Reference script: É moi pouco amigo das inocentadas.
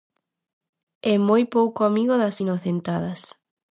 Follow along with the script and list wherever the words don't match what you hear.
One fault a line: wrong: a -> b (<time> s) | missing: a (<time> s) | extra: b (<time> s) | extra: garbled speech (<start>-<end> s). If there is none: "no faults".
no faults